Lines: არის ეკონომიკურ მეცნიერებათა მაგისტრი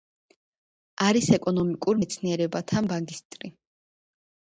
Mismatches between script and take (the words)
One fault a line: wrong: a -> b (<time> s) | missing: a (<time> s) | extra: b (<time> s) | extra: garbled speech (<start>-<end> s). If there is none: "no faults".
no faults